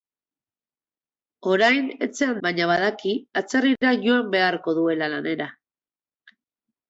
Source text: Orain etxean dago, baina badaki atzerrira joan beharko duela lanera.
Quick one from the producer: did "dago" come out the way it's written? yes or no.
no